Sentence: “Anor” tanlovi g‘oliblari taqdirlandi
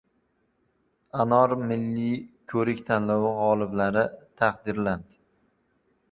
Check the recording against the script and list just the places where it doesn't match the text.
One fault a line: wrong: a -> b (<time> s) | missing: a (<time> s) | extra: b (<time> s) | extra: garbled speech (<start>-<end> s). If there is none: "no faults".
extra: milliy ko‘rik (1.7 s)